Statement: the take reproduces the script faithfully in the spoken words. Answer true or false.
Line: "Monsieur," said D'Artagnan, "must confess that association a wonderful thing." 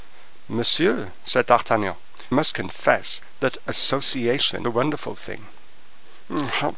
true